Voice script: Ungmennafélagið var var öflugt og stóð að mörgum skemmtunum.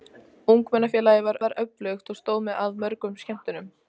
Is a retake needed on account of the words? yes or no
no